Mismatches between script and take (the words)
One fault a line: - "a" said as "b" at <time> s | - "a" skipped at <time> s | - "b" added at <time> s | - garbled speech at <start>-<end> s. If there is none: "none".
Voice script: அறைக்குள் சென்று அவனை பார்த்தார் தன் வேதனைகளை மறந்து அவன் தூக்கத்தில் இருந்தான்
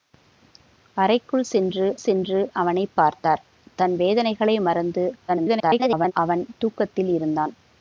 - "சென்று" added at 2.0 s
- garbled speech at 5.3-6.1 s